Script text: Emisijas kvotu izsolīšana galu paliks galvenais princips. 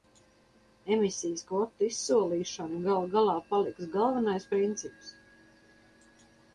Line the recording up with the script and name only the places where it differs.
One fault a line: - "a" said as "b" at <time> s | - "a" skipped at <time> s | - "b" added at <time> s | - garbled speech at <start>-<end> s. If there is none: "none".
- "galā" added at 3.2 s